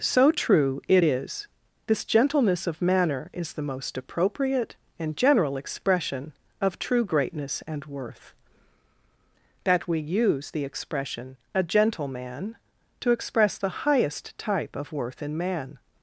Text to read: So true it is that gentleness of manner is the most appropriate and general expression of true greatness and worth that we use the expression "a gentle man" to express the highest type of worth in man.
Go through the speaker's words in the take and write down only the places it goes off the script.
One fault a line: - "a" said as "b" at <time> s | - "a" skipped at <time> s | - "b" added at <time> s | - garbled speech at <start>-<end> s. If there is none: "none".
- "that" said as "this" at 1.9 s